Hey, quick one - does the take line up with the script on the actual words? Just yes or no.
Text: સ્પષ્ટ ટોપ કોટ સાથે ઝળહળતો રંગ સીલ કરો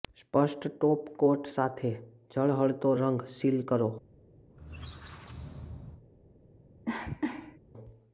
yes